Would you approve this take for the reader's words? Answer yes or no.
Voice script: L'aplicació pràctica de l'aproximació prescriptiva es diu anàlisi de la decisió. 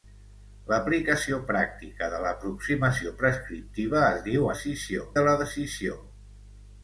no